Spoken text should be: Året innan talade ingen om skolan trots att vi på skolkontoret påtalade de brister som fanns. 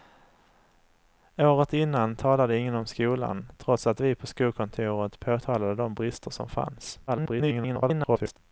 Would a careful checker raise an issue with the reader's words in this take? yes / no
yes